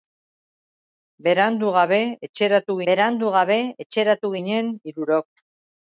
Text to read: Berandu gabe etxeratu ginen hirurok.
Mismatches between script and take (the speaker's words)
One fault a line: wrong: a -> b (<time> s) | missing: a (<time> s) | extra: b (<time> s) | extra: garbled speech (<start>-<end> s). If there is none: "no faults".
extra: berandu gabe etxeratu (2.9 s)